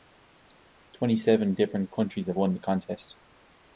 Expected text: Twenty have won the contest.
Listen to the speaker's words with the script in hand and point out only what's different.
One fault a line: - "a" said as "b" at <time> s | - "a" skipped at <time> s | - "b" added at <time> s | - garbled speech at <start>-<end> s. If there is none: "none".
- "seven different countries" added at 1.1 s